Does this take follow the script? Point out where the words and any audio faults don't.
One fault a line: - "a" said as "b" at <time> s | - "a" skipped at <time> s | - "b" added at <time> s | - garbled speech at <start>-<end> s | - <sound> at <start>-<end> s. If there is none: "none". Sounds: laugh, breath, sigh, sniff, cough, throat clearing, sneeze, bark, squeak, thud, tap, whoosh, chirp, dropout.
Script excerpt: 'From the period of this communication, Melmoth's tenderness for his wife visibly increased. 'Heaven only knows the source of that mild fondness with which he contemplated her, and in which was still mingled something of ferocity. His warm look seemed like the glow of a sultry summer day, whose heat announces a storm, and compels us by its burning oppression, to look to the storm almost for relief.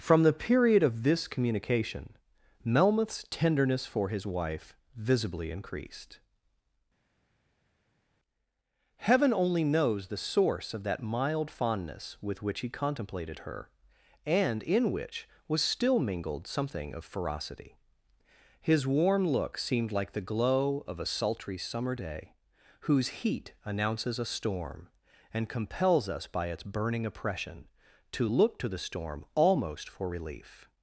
none